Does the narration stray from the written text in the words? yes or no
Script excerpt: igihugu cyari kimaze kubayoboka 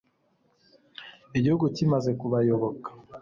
yes